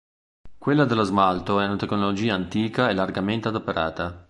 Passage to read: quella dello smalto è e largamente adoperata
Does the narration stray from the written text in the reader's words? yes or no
yes